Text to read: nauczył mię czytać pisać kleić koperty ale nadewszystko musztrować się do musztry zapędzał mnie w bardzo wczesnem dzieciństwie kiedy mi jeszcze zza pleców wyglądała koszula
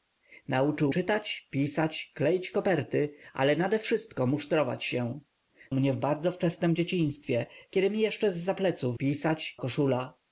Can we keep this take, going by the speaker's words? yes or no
no